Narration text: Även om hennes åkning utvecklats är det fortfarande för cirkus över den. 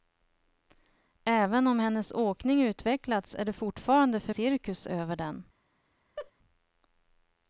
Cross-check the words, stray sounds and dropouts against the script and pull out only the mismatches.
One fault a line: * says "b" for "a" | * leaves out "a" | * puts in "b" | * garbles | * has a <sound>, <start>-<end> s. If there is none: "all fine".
* has a laugh, 6.2-6.3 s